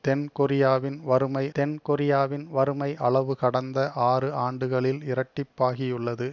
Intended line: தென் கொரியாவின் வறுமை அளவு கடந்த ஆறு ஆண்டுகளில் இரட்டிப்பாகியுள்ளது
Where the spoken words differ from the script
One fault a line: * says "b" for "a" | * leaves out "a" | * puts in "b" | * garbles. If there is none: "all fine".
* puts in "தென் கொரியாவின் வறுமை"